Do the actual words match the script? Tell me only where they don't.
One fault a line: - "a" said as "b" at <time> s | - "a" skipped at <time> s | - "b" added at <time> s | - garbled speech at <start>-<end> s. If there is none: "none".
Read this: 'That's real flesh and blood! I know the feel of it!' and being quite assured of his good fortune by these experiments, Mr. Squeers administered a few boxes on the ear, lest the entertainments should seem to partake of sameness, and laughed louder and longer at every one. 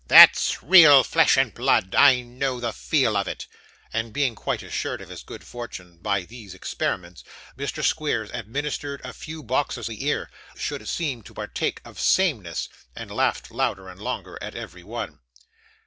- "on" skipped at 9.9 s
- "lest the entertainments" skipped at 10.3 s